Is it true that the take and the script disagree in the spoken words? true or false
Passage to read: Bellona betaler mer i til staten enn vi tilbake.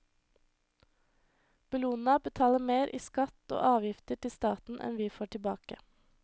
true